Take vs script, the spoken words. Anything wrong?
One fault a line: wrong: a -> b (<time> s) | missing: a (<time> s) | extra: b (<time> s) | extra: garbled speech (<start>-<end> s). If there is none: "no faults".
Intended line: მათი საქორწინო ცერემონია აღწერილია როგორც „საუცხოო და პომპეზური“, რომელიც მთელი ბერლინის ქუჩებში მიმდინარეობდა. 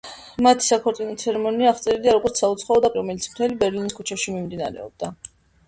missing: პომპეზური (2.9 s)